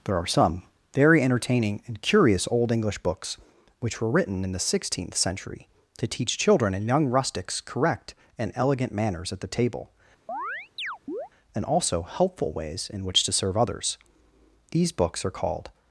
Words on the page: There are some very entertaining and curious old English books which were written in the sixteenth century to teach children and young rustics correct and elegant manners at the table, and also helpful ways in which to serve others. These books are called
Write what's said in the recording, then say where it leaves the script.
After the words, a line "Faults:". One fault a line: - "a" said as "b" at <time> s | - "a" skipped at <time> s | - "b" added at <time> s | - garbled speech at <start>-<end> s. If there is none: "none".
There are some very entertaining and curious old English books which were written in the sixteenth century to teach children and young rustics correct and elegant manners at the table, and also helpful ways in which to serve others. These books are called
Faults:
none